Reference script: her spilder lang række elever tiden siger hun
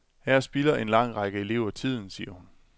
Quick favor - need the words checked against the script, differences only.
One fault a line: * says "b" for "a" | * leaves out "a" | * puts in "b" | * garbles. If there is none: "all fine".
* puts in "en"